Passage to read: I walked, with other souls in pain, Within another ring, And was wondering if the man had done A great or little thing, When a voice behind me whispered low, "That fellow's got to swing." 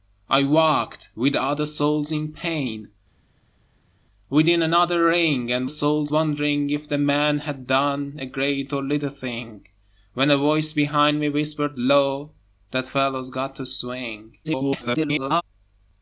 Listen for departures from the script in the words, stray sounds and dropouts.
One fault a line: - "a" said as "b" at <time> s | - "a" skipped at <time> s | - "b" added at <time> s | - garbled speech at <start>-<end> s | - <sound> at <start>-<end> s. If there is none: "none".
- "was" said as "souls" at 5.7 s
- garbled speech at 14.4-15.4 s